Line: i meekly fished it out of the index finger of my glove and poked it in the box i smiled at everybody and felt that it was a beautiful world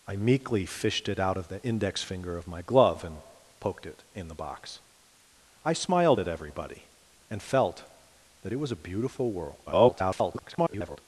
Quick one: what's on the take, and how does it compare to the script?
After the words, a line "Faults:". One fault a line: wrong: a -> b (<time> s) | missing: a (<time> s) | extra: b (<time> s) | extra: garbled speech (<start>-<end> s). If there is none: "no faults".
i meekly fished it out of the index finger of my glove and poked it in the box i smiled at everybody and felt that it was a beautiful world [garbled]
Faults:
extra: garbled speech (9.7-11.0 s)